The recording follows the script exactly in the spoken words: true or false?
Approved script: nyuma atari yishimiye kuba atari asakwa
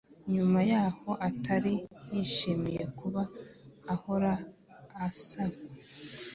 false